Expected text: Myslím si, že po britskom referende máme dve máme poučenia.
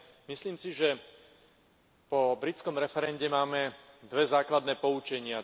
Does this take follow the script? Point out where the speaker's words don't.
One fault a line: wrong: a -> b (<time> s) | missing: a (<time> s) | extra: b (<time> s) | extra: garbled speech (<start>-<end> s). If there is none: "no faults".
wrong: máme -> základné (4.3 s)